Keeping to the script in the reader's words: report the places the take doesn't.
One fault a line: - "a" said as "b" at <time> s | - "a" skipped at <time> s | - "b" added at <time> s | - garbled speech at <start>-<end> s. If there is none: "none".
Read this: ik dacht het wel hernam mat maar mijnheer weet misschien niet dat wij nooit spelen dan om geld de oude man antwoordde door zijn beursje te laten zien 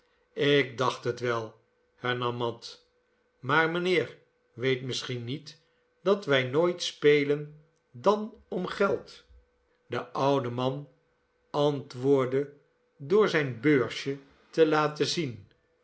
none